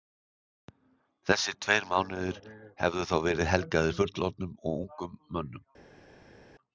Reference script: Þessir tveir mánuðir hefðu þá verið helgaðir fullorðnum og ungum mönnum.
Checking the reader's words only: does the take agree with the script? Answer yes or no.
yes